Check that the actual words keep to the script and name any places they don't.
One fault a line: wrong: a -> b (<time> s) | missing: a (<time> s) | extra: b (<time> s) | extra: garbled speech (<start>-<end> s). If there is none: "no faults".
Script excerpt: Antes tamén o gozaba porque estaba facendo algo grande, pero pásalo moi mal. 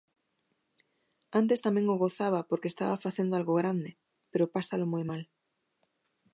no faults